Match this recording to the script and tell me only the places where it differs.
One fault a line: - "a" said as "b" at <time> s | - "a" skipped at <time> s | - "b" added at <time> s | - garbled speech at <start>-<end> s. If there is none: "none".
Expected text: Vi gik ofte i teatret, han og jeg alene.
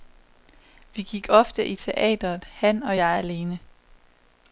none